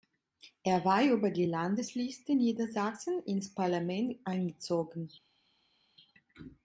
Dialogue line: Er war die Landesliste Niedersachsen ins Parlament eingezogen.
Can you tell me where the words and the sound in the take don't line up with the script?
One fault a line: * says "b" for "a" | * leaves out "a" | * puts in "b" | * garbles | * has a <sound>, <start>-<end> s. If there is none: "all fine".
* puts in "über"